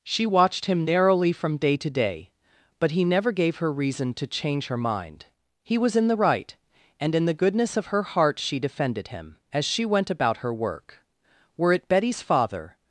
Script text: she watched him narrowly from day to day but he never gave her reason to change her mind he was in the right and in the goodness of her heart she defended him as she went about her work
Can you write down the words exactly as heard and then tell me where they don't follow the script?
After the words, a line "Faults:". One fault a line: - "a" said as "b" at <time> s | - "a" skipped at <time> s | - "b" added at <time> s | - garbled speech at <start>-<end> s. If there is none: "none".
she watched him narrowly from day to day but he never gave her reason to change her mind he was in the right and in the goodness of her heart she defended him as she went about her work were it betty's father
Faults:
- "were it betty's father" added at 11.6 s